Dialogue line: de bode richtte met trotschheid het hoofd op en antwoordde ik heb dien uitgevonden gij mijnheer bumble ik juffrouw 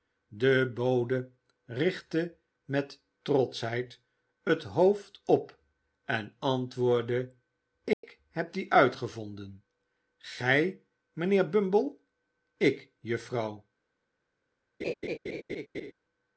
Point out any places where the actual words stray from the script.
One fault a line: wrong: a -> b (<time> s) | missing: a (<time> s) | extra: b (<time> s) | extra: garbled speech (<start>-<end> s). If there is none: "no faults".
no faults